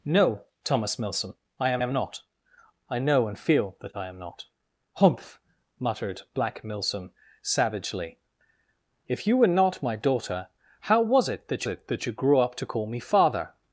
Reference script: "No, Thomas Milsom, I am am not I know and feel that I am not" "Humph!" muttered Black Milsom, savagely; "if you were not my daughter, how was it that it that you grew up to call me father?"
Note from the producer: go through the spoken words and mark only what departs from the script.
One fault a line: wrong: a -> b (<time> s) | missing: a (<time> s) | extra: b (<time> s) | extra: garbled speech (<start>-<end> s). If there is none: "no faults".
no faults